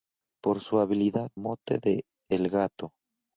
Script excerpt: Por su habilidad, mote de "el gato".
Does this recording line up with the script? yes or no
yes